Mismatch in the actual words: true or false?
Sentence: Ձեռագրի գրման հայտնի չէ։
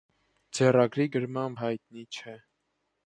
false